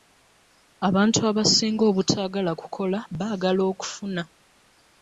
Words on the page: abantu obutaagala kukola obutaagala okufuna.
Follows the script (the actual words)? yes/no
no